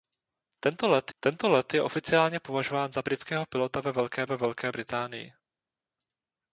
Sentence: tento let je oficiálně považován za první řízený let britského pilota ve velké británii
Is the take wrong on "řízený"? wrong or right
wrong